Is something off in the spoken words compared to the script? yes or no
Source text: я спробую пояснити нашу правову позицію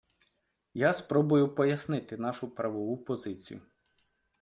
no